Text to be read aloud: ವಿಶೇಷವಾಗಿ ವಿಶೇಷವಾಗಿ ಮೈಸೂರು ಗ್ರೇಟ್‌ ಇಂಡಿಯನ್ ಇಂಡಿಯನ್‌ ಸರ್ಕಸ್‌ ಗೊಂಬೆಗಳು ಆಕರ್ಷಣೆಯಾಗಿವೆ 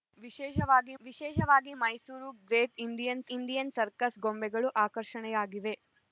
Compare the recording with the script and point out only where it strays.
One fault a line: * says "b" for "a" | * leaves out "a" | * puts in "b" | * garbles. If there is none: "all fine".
all fine